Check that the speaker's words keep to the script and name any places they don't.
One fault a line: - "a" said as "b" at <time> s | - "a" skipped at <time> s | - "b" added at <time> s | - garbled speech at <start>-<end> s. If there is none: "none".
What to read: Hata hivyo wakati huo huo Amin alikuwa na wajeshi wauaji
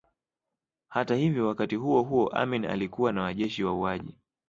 none